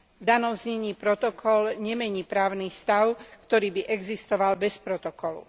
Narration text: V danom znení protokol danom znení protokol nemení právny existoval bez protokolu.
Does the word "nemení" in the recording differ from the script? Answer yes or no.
yes